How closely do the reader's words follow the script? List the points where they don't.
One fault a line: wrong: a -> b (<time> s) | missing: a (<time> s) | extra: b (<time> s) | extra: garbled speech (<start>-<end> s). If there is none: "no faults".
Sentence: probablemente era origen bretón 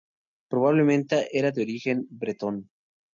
extra: de (1.5 s)